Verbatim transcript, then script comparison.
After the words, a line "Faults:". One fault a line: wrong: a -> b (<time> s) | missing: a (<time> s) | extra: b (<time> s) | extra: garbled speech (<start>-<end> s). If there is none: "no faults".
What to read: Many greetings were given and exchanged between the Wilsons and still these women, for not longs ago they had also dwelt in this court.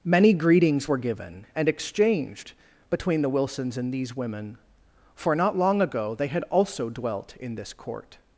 Many greetings were given and exchanged between the Wilsons and these women, for not long ago they had also dwelt in this court.
Faults:
missing: still (3.9 s)
wrong: longs -> long (5.6 s)